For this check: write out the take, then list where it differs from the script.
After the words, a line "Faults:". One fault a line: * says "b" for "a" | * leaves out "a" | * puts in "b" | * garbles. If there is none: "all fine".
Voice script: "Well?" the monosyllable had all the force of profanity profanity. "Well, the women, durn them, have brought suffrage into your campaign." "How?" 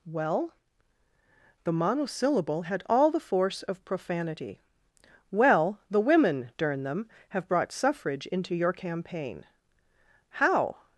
"Well?" the monosyllable had all the force of profanity. "Well, the women, durn them, have brought suffrage into your campaign." "How?"
Faults:
* leaves out "profanity"